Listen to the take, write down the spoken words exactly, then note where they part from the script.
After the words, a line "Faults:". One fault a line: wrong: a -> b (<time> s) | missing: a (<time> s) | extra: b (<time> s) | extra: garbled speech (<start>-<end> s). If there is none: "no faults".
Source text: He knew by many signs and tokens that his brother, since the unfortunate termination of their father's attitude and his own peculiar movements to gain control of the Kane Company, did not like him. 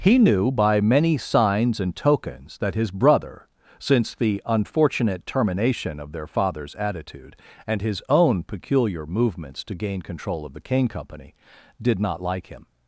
He knew by many signs and tokens that his brother, since the unfortunate termination of their father's attitude and his own peculiar movements to gain control of the Kane Company, did not like him.
Faults:
no faults